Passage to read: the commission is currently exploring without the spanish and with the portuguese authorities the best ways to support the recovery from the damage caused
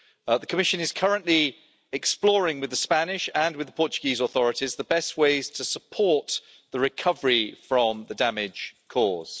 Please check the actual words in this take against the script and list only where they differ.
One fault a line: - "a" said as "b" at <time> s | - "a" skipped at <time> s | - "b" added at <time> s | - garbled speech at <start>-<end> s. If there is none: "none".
- "without" said as "with" at 2.6 s